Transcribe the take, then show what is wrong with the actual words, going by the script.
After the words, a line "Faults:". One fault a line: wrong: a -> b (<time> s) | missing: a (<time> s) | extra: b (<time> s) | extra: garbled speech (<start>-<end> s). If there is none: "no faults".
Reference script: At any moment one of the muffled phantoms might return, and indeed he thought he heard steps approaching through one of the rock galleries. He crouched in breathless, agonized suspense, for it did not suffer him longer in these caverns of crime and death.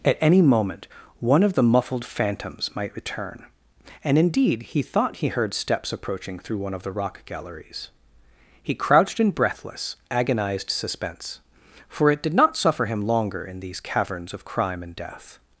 At any moment one of the muffled phantoms might return, and indeed he thought he heard steps approaching through one of the rock galleries. He crouched in breathless, agonized suspense, for it did not suffer him longer in these caverns of crime and death.
Faults:
no faults